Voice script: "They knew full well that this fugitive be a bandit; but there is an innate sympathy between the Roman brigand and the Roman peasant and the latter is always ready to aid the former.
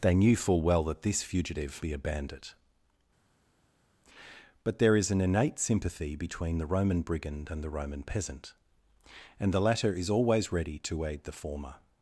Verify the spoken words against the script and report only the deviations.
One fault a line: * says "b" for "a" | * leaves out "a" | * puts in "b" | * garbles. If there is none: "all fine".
all fine